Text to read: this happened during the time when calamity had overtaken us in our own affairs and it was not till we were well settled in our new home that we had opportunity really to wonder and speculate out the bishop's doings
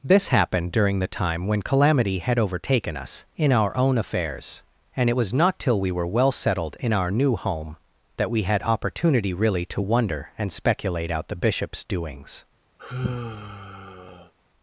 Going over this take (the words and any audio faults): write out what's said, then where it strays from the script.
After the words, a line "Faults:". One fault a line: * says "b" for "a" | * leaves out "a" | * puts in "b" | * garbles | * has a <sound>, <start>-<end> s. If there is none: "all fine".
this happened during the time when calamity had overtaken us in our own affairs and it was not till we were well settled in our new home that we had opportunity really to wonder and speculate out the bishop's doings
Faults:
* has a sigh, 12.8-14.3 s